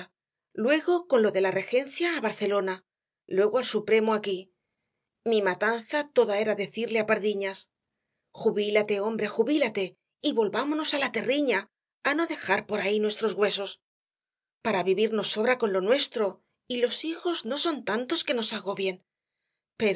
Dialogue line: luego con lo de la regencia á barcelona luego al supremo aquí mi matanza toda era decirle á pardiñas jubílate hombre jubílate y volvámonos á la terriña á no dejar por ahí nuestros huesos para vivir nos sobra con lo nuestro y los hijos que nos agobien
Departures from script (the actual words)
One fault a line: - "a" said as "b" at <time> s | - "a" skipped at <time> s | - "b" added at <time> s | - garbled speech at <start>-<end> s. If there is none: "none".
- "no son tantos" added at 17.4 s